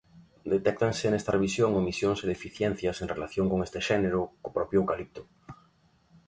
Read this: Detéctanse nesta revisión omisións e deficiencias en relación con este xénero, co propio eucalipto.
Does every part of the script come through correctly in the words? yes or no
yes